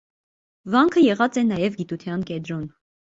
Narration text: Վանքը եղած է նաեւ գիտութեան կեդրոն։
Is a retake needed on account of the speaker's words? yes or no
no